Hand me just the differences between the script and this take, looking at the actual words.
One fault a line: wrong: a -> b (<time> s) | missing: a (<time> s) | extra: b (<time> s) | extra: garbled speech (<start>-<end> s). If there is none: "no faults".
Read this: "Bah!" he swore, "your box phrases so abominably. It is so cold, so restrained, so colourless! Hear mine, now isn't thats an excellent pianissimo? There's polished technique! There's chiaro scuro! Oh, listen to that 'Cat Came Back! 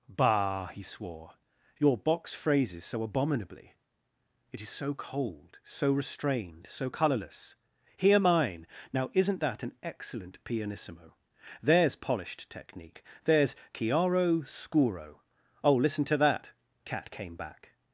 wrong: thats -> that (9.4 s)